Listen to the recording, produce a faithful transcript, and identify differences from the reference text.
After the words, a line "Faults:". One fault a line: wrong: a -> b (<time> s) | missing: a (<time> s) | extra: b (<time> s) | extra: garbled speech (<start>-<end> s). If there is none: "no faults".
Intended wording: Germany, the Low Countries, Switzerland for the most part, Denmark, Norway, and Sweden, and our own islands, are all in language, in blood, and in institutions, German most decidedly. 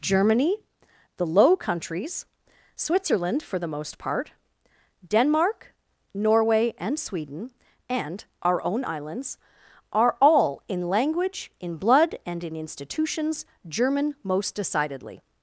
Germany, the Low Countries, Switzerland for the most part, Denmark, Norway, and Sweden, and our own islands, are all in language, in blood, and in institutions, German most decidedly.
Faults:
no faults